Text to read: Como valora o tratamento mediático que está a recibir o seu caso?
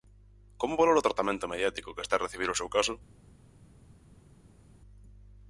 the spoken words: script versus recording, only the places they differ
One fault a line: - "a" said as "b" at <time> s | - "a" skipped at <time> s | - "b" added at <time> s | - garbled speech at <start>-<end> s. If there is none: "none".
none